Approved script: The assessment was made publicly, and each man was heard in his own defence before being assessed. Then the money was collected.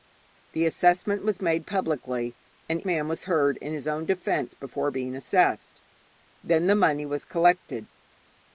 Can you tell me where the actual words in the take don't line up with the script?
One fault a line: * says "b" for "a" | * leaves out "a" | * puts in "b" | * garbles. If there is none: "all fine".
* leaves out "each"